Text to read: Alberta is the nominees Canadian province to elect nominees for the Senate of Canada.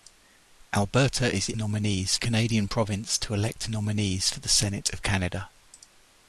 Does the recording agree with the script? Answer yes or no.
yes